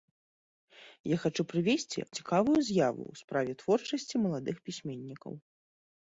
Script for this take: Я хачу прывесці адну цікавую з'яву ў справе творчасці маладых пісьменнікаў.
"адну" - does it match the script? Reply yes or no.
no